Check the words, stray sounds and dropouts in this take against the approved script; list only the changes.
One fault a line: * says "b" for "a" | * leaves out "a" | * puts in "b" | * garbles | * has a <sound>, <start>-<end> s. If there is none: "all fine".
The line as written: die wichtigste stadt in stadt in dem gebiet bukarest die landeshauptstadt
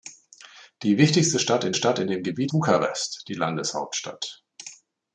all fine